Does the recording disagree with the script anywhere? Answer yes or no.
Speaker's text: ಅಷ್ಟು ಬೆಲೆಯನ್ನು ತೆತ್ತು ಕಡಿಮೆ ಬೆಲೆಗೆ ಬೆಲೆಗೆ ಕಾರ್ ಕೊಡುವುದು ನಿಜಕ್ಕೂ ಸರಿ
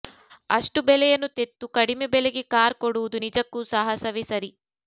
yes